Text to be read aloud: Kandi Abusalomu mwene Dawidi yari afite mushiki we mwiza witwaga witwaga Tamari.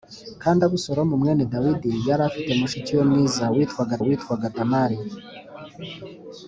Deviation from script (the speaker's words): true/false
false